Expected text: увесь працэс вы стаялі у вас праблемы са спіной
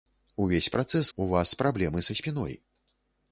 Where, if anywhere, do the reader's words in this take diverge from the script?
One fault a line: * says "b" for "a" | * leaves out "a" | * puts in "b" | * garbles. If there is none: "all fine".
* leaves out "вы стаялі"